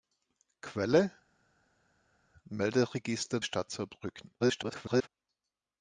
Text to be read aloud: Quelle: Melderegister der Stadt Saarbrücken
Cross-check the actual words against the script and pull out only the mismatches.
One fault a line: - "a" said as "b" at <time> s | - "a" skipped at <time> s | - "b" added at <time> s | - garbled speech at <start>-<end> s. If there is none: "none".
- "der" skipped at 3.4 s
- garbled speech at 4.4-5.1 s